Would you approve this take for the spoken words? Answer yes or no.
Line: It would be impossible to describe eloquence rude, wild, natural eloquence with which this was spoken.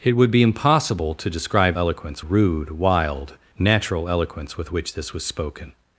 yes